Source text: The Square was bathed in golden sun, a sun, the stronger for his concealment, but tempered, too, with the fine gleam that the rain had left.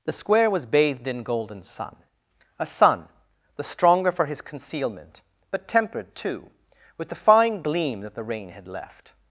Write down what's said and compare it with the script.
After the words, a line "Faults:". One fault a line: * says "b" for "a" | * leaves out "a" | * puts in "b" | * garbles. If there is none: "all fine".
The Square was bathed in golden sun, a sun, the stronger for his concealment, but tempered, too, with the fine gleam that the rain had left.
Faults:
all fine